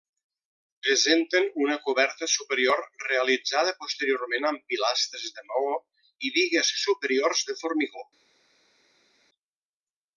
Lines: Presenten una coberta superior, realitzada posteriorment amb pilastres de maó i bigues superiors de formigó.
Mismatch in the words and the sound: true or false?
false